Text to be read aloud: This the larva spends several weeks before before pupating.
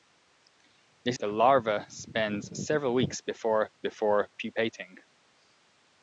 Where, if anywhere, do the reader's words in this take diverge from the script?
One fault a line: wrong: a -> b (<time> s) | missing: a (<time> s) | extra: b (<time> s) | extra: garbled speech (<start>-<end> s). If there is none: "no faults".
no faults